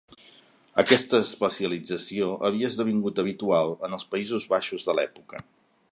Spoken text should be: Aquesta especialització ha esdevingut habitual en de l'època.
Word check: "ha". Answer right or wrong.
wrong